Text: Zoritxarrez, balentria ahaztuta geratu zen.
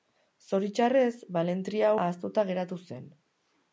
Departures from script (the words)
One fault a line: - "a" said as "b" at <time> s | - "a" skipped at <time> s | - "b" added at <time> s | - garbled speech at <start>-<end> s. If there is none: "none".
none